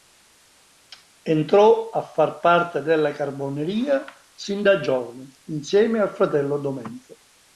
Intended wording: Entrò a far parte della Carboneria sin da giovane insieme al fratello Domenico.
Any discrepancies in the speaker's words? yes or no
no